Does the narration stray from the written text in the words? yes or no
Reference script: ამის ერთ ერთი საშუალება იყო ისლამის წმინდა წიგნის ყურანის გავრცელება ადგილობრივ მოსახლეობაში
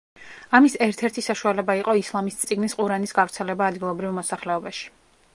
yes